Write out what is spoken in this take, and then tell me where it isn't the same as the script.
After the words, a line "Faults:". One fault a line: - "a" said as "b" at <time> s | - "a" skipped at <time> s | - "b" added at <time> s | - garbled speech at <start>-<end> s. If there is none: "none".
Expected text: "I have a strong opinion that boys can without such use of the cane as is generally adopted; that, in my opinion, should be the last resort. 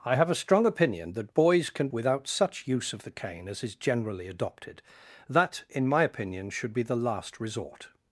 "I have a strong opinion that boys can without such use of the cane as is generally adopted; that, in my opinion, should be the last resort.
Faults:
none